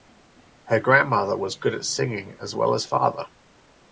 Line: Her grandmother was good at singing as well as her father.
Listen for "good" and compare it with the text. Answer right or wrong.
right